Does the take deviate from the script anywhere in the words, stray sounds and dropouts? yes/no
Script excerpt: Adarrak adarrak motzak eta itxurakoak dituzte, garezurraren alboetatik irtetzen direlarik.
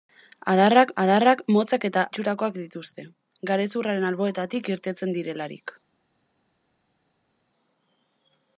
no